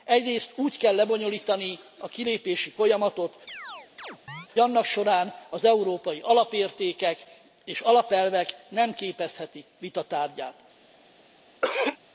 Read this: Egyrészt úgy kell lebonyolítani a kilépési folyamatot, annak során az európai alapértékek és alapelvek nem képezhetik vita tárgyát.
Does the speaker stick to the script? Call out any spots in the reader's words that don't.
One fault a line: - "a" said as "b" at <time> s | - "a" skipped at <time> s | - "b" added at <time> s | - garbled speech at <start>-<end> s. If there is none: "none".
none